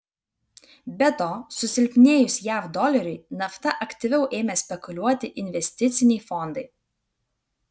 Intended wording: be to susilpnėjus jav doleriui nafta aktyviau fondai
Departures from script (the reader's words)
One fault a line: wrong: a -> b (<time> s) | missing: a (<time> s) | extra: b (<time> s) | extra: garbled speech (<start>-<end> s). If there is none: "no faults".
extra: ėmė spekuliuoti investiciniai (4.4 s)